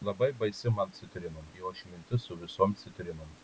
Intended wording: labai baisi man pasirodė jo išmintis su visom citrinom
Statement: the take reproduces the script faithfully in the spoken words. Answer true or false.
false